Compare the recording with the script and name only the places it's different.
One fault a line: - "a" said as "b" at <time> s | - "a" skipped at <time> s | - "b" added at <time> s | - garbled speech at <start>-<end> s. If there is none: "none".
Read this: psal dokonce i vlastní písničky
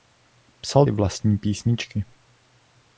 - "dokonce" skipped at 0.8 s